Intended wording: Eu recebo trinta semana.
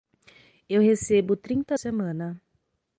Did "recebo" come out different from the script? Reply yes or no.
no